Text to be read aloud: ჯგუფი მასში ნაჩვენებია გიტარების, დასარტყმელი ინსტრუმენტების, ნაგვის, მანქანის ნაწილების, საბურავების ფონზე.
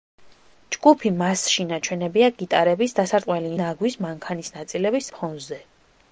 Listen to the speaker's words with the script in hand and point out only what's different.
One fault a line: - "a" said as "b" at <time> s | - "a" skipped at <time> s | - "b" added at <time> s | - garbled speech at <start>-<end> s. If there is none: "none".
- "ინსტრუმენტების" skipped at 3.5 s
- "საბურავების" skipped at 5.1 s